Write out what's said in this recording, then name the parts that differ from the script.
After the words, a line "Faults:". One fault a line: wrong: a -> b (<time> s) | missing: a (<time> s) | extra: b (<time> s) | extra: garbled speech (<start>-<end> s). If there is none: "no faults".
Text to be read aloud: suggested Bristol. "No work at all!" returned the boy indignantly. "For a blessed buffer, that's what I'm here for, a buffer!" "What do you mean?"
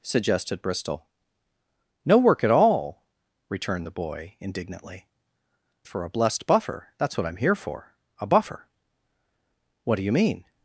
suggested Bristol. "No work at all!" returned the boy indignantly. "For a blessed buffer, that's what I'm here for, a buffer!" "What do you mean?"
Faults:
no faults